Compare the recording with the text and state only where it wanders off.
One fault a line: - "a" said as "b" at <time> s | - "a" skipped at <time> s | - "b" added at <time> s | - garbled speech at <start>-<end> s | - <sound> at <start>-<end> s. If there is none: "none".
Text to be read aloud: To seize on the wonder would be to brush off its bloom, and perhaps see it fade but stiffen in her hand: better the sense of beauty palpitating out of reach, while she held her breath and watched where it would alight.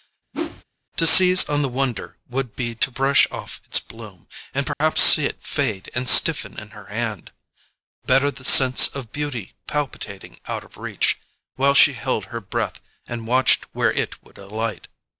- whoosh at 0.3-0.6 s
- dropout at 4.7-4.8 s
- "but" said as "and" at 5.9 s